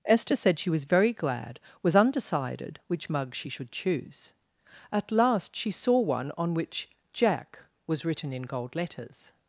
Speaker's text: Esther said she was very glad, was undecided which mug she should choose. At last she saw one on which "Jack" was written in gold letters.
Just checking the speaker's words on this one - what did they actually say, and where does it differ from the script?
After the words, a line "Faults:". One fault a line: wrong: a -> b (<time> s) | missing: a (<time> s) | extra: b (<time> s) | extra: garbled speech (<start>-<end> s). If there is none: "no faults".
Esther said she was very glad, was undecided which mug she should choose. At last she saw one on which "Jack" was written in gold letters.
Faults:
no faults